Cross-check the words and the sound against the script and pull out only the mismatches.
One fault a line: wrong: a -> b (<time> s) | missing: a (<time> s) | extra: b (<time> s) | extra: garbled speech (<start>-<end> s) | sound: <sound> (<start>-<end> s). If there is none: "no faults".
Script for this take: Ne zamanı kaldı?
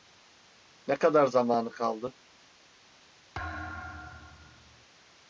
extra: kadar (0.9 s)
sound: thud (3.3-4.9 s)